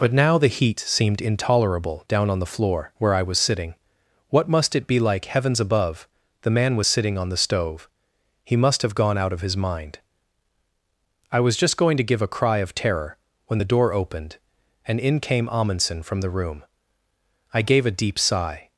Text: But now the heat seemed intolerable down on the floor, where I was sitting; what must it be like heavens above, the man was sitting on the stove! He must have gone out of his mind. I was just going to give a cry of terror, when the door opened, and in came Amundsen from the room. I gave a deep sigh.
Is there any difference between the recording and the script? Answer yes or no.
no